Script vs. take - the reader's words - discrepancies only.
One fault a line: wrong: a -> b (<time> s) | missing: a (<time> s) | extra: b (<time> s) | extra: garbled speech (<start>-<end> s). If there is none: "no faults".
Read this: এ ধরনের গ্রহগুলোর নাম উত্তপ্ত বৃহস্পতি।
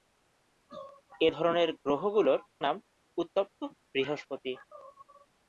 no faults